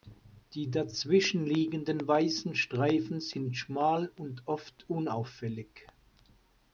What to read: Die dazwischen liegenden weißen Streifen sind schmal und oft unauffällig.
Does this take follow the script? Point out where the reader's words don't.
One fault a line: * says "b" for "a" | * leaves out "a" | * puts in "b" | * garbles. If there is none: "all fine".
all fine